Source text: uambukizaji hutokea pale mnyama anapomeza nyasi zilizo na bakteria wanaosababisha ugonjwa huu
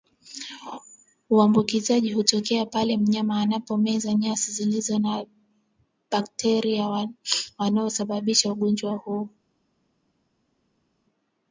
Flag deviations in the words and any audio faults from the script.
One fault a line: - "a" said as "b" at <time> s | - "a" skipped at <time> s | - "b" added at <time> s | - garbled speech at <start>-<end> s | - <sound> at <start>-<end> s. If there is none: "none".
none